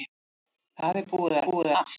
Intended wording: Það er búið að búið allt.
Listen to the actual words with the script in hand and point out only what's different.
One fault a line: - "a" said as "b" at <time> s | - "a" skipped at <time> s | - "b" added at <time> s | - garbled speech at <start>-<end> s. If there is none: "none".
none